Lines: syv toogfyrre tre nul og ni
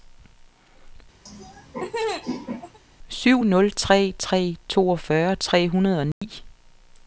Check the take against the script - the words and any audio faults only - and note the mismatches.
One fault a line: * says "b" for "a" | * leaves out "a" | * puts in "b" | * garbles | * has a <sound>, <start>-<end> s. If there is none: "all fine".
* has a laugh, 1.3-2.8 s
* puts in "nul tre tre"
* says "hundrede" for "nul"
* has a dropout, 6.1-6.2 s